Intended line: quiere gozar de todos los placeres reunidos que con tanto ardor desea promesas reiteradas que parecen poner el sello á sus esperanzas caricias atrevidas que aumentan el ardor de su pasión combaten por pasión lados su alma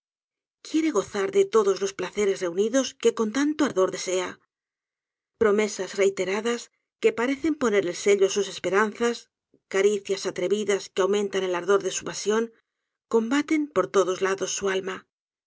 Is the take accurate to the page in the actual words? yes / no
no